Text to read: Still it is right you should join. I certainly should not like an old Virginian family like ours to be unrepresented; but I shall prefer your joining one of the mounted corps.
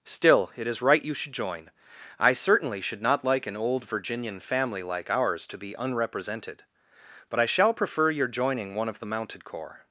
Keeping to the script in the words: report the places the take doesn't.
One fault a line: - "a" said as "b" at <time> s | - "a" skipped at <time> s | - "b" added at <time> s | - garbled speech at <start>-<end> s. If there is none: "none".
none